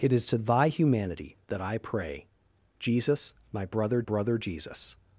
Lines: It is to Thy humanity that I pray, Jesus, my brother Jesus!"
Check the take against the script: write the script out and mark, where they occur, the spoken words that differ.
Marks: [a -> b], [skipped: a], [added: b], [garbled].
It is to Thy humanity that I pray, Jesus, my brother [added: brother] Jesus!"